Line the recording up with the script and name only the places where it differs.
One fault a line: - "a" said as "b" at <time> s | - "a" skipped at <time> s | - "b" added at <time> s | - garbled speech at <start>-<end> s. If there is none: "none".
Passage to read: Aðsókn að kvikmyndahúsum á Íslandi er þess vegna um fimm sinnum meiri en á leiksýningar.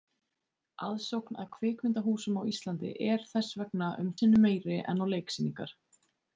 - "fimm" skipped at 4.1 s